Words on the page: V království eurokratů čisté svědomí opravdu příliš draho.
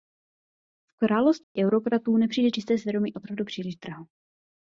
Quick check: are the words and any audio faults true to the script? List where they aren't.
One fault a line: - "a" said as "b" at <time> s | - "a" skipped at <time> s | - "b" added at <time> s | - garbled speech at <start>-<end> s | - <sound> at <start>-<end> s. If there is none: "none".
- dropout at 1.4-1.6 s
- "nepřijde" added at 2.2 s